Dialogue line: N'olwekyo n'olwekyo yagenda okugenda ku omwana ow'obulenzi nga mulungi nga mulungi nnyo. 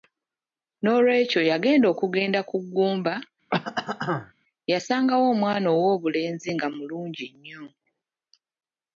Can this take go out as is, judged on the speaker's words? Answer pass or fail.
fail